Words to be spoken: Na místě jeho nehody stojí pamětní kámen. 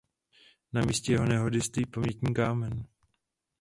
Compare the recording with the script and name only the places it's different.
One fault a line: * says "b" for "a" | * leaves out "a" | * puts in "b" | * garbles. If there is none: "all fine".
all fine